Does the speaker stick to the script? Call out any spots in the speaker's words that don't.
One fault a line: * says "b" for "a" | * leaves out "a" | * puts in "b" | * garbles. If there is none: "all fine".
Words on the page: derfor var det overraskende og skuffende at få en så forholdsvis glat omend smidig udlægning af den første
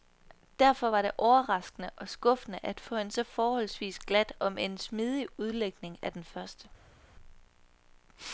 all fine